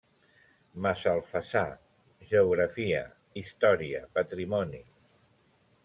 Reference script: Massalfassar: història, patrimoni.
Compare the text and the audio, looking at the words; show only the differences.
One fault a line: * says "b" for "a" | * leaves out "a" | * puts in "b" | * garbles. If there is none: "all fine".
* puts in "geografia"